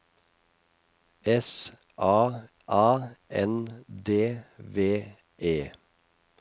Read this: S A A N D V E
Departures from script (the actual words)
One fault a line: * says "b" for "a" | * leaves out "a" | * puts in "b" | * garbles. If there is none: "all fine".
all fine